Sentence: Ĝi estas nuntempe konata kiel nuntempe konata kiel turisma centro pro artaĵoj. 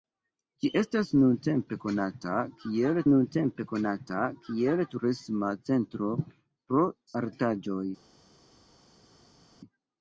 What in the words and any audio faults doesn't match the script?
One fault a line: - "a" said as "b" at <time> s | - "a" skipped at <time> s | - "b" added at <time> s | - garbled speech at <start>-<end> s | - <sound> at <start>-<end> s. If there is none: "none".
none